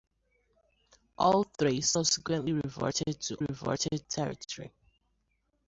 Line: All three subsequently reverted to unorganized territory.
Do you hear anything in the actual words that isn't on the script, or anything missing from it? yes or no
yes